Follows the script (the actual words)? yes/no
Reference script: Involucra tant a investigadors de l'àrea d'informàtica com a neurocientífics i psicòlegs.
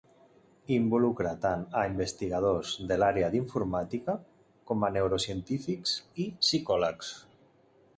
yes